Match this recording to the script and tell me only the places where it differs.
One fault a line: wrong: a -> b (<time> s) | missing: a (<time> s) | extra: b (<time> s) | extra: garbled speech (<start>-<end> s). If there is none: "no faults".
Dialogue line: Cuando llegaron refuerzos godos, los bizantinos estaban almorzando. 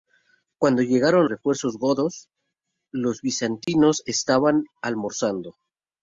no faults